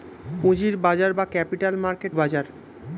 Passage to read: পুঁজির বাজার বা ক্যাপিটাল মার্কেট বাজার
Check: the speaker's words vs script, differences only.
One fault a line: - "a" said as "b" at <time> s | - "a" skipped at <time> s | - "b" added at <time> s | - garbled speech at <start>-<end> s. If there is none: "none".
none